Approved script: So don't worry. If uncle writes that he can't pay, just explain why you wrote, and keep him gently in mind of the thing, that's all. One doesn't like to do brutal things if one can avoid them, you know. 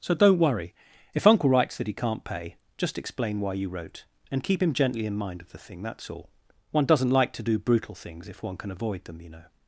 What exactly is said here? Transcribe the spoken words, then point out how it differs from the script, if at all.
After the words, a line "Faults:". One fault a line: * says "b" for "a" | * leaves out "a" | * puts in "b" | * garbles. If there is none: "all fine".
So don't worry. If uncle writes that he can't pay, just explain why you wrote, and keep him gently in mind of the thing, that's all. One doesn't like to do brutal things if one can avoid them, you know.
Faults:
all fine